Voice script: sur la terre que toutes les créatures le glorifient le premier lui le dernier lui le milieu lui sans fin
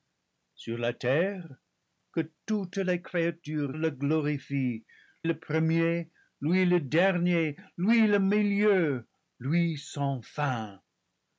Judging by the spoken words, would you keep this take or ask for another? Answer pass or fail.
pass